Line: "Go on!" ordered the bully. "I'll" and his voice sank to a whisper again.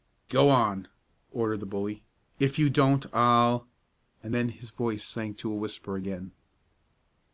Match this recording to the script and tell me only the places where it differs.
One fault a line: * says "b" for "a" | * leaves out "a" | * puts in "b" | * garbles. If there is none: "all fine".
* puts in "If you don't"
* puts in "then"